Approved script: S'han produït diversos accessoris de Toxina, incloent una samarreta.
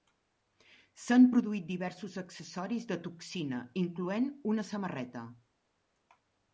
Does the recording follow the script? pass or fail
pass